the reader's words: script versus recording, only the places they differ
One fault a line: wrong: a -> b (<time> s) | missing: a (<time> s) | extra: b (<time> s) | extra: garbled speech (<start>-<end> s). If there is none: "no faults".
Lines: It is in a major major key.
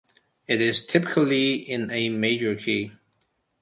extra: typically (0.9 s)
missing: major (2.6 s)